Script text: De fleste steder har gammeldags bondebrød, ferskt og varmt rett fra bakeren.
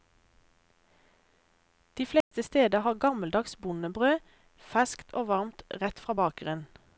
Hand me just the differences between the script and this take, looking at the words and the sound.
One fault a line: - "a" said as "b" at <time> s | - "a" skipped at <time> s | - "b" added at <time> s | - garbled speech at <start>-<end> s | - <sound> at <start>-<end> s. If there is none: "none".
- dropout at 2.2-2.3 s